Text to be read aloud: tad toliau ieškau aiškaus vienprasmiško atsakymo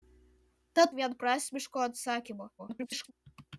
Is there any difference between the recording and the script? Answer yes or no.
yes